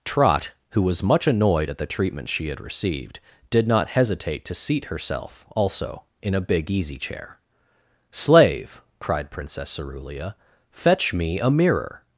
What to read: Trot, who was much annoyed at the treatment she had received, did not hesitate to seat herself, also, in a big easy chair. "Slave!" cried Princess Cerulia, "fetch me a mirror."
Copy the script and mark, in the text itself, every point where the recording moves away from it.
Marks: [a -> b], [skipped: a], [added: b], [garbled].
Trot, who was much annoyed at the treatment she had received, did not hesitate to seat herself, also, in a big easy chair. "Slave!" cried Princess Cerulia, "fetch me a mirror."